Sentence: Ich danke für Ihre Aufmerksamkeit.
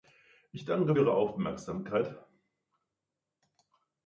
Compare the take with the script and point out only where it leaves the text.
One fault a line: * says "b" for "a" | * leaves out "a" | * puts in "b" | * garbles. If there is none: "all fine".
* leaves out "für"